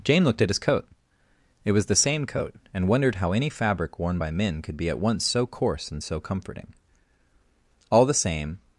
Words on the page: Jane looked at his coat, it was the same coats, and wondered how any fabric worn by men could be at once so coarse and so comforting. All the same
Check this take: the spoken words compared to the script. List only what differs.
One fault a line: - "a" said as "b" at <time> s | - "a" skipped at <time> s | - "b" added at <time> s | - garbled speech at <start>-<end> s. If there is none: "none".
- "coats" said as "coat" at 2.2 s